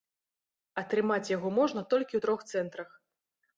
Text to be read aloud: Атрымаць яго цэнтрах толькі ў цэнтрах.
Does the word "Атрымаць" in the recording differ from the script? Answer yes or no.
no